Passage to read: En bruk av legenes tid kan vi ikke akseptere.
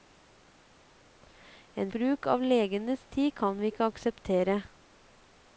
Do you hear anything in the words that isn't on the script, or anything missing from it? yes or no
no